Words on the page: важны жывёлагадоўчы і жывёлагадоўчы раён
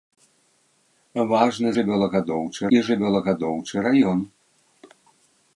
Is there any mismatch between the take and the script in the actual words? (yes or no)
no